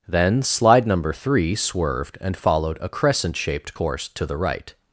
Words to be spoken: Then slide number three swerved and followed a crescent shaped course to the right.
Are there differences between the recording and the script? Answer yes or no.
no